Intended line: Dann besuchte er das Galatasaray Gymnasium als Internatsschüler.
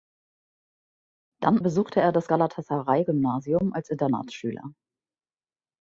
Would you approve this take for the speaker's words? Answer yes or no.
yes